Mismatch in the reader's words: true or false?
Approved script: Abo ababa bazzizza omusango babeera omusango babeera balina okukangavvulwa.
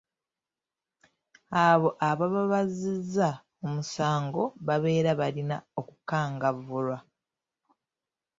true